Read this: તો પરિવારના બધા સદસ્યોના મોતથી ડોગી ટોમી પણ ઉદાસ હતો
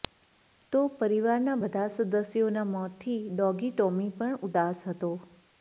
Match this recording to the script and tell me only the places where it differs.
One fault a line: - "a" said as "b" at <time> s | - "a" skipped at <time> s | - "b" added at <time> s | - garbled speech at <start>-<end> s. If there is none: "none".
none